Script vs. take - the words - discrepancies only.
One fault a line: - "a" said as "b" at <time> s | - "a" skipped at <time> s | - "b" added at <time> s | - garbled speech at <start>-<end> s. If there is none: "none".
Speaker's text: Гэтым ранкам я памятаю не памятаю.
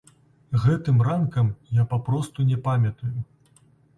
- "памятаю" said as "папросту" at 1.9 s